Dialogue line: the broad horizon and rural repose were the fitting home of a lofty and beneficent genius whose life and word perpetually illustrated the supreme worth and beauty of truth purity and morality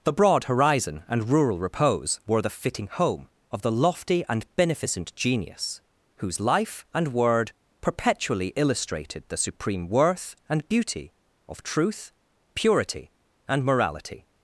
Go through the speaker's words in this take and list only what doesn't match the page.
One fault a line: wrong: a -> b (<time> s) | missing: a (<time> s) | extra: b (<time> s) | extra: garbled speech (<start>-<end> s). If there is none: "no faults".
wrong: a -> the (3.6 s)